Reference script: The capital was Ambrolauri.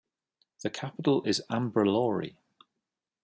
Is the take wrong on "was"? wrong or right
wrong